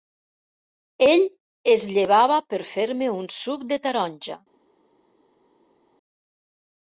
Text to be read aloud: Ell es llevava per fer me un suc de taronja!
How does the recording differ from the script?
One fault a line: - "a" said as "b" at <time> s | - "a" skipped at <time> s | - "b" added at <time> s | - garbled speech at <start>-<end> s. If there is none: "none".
none